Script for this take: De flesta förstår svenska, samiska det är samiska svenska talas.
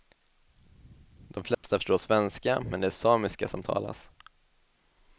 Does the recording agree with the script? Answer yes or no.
no